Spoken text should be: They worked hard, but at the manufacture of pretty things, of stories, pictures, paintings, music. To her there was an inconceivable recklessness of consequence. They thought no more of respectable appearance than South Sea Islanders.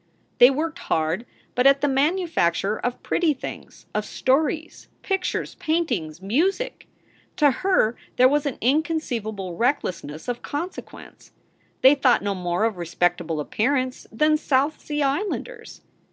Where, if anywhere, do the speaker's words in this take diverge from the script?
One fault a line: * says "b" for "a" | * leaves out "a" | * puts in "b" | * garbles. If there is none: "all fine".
all fine